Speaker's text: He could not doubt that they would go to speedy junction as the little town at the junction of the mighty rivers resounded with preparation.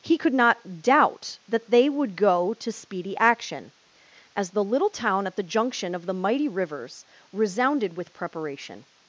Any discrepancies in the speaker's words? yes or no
yes